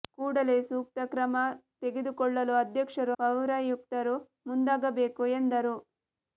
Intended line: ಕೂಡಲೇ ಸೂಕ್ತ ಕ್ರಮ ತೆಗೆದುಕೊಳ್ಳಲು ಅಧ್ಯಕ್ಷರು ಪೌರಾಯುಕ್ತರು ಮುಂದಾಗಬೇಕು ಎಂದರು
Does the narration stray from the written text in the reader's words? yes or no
no